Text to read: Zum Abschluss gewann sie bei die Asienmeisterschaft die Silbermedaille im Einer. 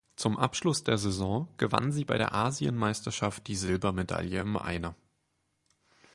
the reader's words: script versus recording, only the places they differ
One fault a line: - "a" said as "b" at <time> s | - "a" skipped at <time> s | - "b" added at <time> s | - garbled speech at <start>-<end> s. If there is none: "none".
- "der Saison" added at 0.8 s
- "die" said as "der" at 2.2 s